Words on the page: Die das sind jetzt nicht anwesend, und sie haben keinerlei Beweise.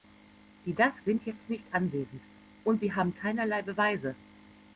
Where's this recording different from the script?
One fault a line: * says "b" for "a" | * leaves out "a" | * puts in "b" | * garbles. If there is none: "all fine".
all fine